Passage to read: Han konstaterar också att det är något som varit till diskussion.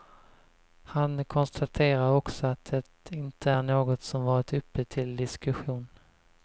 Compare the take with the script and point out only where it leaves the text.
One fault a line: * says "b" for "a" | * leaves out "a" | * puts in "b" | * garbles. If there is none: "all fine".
* puts in "inte"
* puts in "uppe"